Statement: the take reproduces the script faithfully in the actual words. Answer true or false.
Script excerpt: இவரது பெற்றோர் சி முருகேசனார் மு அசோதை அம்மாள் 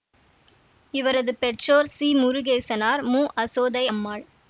true